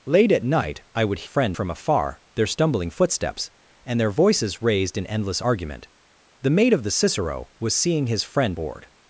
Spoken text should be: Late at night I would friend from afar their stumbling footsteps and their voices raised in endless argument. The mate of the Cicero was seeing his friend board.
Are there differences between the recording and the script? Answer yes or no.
no